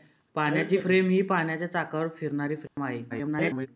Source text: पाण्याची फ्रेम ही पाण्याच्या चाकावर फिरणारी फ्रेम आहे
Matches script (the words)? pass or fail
fail